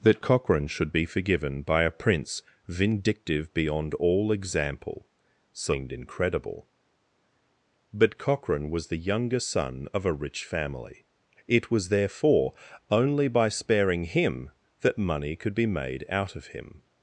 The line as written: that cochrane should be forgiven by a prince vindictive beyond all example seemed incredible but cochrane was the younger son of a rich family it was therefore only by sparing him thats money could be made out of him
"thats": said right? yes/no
no